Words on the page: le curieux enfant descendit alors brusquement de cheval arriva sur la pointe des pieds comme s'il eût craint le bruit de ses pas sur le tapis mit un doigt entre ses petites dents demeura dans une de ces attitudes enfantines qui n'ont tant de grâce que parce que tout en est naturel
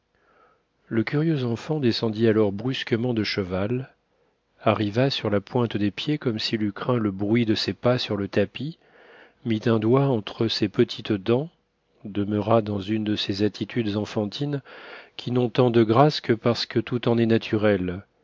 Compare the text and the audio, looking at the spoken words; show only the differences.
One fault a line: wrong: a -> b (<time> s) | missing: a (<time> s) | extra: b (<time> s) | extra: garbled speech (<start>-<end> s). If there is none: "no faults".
no faults